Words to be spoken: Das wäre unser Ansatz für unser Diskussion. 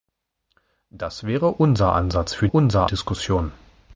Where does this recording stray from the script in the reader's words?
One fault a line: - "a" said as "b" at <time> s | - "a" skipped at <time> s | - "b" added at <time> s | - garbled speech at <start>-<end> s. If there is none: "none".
none